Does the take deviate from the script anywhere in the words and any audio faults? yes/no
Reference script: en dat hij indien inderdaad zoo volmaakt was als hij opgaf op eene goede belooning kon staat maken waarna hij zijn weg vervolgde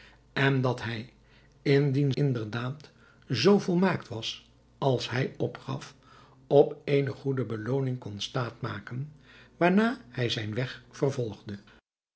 no